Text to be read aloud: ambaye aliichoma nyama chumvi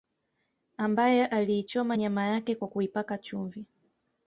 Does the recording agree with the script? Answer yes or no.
no